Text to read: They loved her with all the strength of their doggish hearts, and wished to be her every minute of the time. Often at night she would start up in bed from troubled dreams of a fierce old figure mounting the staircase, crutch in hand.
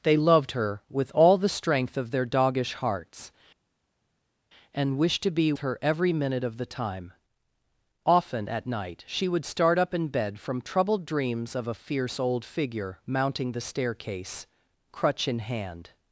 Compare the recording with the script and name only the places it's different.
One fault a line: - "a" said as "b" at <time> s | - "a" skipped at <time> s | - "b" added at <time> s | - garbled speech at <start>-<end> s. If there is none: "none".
none